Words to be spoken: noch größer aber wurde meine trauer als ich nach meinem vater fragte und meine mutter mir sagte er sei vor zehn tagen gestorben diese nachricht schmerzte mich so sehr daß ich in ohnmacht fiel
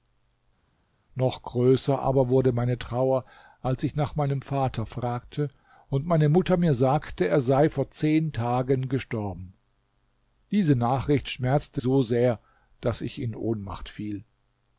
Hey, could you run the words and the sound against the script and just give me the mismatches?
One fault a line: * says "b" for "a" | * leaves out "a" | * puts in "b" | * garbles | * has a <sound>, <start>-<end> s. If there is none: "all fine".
* leaves out "mich"